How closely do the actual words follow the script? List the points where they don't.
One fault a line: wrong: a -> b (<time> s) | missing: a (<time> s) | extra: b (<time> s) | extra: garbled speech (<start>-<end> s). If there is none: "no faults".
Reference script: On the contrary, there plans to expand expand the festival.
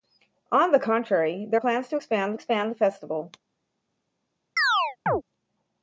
no faults